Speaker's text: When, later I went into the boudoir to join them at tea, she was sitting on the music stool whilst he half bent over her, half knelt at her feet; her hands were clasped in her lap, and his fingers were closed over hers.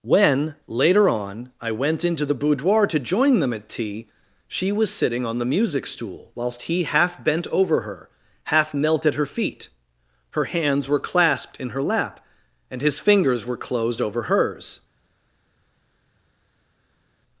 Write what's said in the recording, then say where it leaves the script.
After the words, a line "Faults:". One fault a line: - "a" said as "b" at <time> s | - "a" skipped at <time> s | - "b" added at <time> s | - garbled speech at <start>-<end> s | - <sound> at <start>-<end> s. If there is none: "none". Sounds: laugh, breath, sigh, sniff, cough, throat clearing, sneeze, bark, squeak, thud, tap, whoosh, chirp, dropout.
When, later on, I went into the boudoir to join them at tea, she was sitting on the music stool whilst he half bent over her, half knelt at her feet; her hands were clasped in her lap, and his fingers were closed over hers.
Faults:
- "on" added at 1.1 s